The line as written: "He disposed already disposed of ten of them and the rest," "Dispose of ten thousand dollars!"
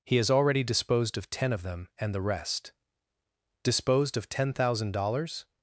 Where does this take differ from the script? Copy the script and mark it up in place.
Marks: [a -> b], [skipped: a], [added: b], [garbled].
"He [disposed -> has] already disposed of ten of them and the rest," ["Dispose -> Disposed] of ten thousand dollars!"